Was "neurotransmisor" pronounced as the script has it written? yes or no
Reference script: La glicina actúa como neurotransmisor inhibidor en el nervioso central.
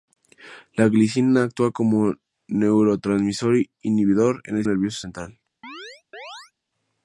yes